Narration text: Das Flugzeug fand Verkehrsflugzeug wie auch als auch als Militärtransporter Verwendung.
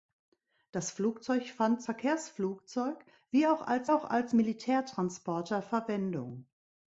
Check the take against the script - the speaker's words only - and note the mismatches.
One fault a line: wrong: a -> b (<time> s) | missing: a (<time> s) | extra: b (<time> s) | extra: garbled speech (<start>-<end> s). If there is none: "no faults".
no faults